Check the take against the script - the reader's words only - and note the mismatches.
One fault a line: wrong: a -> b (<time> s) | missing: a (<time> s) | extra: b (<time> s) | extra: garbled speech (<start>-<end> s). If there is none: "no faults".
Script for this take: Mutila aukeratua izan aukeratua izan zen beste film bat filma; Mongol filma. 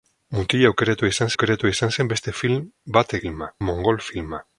no faults